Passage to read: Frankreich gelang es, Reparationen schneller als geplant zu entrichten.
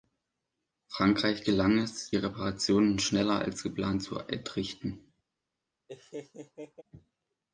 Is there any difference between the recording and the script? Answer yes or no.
no